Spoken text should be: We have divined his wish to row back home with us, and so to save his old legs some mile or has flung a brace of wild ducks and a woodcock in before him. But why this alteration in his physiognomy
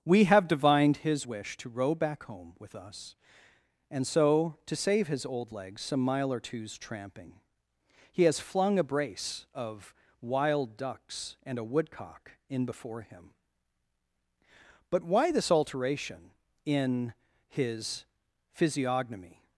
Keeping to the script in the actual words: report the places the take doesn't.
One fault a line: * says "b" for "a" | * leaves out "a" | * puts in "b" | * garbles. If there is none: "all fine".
* puts in "two's tramping He"